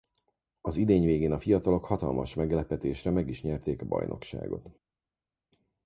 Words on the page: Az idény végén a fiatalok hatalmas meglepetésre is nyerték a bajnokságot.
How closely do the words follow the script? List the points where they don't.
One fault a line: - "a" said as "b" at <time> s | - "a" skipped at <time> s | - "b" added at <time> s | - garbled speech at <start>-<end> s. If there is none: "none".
- "meg" added at 3.1 s